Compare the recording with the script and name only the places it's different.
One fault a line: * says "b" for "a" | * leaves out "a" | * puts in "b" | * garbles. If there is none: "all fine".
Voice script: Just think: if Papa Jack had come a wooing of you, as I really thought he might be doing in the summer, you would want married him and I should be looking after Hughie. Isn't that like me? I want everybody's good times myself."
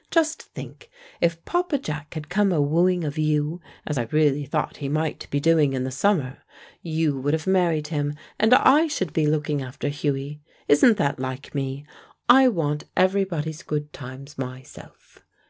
* says "have" for "want"